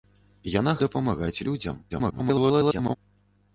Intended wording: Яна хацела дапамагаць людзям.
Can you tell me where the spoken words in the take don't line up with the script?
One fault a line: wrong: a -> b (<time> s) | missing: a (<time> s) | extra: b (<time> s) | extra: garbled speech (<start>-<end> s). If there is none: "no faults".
missing: хацела (0.7 s)
extra: garbled speech (1.9-3.0 s)